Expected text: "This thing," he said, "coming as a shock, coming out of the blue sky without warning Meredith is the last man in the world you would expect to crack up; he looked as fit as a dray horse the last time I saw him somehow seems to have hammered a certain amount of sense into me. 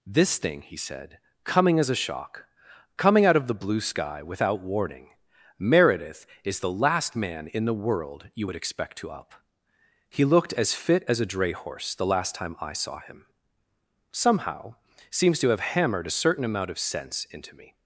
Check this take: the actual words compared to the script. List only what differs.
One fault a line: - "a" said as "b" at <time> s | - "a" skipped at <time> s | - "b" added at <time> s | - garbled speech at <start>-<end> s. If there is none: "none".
- "crack" skipped at 9.1 s